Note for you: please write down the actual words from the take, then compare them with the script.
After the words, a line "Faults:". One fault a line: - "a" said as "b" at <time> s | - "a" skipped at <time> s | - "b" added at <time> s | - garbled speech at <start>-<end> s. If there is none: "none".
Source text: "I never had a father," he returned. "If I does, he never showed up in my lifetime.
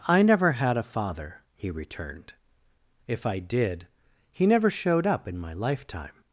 "I never had a father," he returned. "If I did, he never showed up in my lifetime.
Faults:
- "does" said as "did" at 3.4 s